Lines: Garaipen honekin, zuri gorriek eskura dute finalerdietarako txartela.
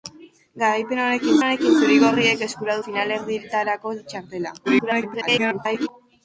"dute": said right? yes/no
no